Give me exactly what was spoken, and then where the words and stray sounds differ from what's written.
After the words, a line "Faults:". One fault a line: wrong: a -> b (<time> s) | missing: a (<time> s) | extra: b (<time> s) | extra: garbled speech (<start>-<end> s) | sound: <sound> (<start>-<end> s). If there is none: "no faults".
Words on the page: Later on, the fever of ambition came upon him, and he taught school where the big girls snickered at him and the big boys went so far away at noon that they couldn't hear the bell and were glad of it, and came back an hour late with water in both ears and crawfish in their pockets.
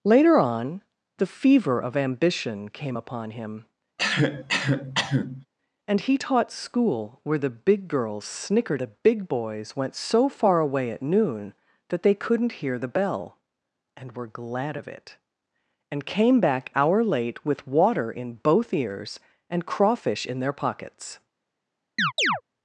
Later on, the fever of ambition came upon him, and he taught school where the big girls snickered the big boys went so far away at noon that they couldn't hear the bell and were glad of it, and came back hour late with water in both ears and crawfish in their pockets.
Faults:
sound: cough (4.0-5.5 s)
missing: at him and (8.8 s)
missing: an (16.7 s)
sound: chirp (22.0-22.4 s)